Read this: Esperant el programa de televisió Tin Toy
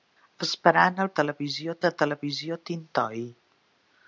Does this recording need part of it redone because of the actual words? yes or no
yes